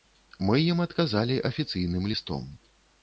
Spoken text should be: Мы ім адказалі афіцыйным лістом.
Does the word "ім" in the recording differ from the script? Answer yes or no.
no